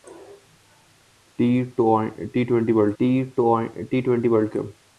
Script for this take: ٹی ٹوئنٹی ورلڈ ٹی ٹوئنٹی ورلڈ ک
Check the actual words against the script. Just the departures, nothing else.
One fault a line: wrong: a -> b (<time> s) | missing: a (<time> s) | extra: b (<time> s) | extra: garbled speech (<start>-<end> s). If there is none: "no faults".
no faults